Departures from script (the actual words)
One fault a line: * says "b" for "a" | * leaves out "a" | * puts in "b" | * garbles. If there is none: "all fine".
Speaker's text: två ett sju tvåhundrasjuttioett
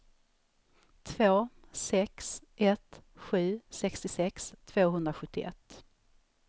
* puts in "sex"
* puts in "sextiosex"